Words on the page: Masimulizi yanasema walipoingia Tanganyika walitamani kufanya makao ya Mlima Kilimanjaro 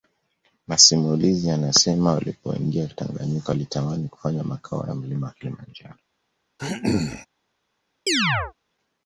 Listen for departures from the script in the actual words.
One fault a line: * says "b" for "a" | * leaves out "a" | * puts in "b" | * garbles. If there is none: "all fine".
all fine